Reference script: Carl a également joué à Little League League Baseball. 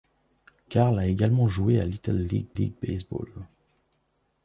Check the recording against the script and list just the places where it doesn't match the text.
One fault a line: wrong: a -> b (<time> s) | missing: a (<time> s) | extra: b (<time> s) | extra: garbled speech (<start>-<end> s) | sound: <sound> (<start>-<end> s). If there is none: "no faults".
no faults